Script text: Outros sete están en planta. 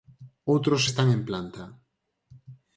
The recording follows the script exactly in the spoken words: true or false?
false